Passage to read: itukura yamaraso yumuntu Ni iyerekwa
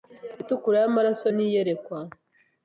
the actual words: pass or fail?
fail